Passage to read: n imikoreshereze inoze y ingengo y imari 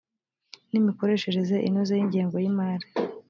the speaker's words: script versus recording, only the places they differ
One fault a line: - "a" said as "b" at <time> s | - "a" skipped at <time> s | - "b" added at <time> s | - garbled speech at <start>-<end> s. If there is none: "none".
none